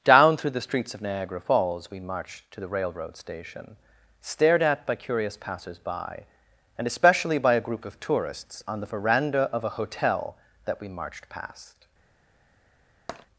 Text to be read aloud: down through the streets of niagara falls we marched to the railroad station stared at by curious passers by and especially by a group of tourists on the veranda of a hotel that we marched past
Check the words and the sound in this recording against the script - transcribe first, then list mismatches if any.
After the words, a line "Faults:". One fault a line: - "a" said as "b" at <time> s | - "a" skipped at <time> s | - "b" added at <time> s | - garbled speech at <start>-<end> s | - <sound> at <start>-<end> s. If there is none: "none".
down through the streets of niagara falls we marched to the railroad station stared at by curious passers by and especially by a group of tourists on the veranda of a hotel that we marched past
Faults:
- tap at 13.1-13.3 s